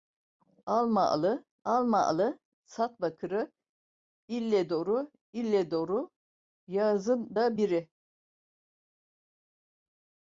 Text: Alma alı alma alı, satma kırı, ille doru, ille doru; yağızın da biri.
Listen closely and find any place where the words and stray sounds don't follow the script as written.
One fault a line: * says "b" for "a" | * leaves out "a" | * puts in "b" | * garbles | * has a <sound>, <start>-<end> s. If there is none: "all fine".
all fine